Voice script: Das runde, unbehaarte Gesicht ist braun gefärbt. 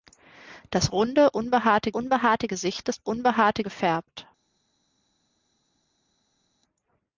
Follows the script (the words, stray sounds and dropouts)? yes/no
no